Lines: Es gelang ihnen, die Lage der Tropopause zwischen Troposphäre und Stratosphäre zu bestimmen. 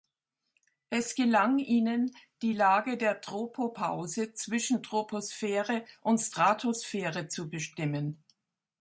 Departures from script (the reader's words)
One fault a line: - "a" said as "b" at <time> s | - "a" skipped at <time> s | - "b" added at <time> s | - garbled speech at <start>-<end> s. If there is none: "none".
none